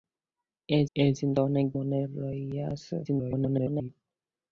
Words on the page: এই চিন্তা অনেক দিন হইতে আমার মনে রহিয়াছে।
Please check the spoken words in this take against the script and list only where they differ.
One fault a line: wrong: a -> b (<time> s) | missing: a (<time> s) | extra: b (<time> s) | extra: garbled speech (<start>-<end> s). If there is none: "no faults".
extra: এই (1.0 s)
missing: দিন হইতে আমার (1.7 s)
extra: garbled speech (3.0-3.9 s)